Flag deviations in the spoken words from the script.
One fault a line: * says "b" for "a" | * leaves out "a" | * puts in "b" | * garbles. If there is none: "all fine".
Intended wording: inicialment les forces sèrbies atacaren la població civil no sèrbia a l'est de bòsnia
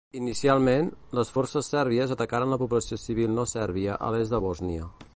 all fine